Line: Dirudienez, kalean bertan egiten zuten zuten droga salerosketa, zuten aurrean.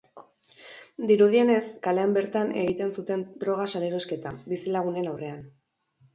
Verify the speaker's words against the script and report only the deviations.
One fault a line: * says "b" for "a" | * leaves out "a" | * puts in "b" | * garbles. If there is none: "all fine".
* leaves out "zuten"
* says "bizilagunen" for "zuten"